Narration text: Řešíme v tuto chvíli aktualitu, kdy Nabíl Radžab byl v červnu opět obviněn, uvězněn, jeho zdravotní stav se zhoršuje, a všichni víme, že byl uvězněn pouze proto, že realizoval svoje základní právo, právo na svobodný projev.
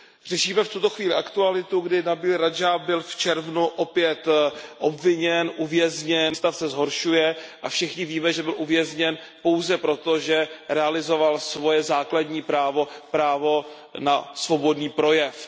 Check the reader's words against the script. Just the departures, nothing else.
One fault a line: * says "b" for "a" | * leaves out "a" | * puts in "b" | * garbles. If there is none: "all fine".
* leaves out "jeho zdravotní"